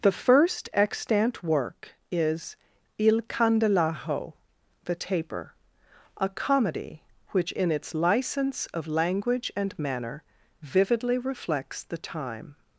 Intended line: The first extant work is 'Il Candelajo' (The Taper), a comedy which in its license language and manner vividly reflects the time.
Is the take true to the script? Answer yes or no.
no